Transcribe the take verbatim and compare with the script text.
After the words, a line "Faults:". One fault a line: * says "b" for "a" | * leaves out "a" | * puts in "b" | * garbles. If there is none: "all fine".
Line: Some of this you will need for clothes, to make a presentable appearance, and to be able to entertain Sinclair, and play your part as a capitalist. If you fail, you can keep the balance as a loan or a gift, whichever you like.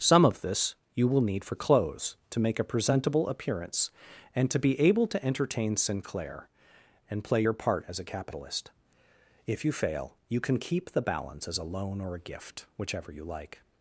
Some of this you will need for clothes, to make a presentable appearance, and to be able to entertain Sinclair, and play your part as a capitalist. If you fail, you can keep the balance as a loan or a gift, whichever you like.
Faults:
all fine